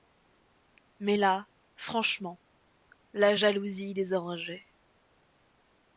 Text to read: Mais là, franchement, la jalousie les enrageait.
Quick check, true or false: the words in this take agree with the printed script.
true